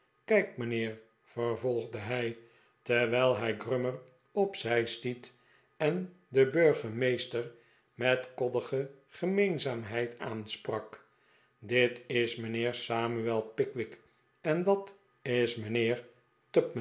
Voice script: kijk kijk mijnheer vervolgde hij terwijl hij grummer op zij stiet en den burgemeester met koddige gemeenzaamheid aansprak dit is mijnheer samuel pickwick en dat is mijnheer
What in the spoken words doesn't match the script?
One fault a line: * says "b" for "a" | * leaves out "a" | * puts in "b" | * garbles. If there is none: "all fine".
* leaves out "kijk"